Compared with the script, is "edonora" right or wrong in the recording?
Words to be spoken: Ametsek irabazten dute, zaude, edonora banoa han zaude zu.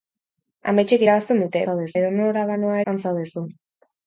right